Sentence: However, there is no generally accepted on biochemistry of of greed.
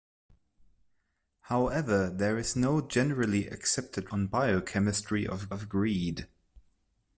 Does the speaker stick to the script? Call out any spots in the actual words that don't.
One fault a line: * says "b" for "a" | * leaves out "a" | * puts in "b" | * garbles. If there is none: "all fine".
all fine